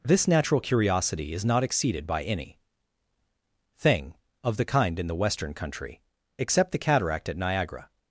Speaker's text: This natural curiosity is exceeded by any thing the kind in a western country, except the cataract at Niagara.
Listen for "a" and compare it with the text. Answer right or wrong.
wrong